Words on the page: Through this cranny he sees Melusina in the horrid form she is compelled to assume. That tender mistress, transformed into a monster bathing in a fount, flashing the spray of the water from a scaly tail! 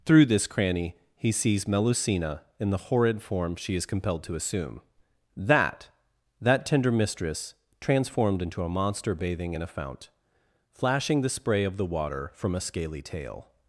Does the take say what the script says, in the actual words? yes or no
no